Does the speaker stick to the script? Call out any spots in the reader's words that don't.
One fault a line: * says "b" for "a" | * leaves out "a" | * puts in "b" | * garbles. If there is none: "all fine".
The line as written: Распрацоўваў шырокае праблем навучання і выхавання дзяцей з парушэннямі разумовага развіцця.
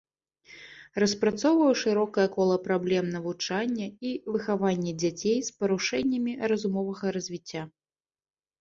* puts in "кола"